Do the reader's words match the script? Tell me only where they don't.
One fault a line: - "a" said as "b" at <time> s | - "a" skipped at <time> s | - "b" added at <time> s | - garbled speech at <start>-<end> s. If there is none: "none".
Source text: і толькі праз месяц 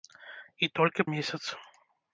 - "праз" skipped at 1.1 s